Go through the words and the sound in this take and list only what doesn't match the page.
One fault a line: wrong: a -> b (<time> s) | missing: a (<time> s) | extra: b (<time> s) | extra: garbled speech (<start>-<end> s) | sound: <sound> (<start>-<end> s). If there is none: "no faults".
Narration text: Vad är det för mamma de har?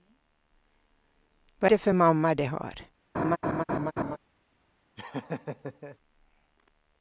missing: är (1.7 s)
sound: laugh (3.1-4.2 s)
sound: laugh (5.0-6.0 s)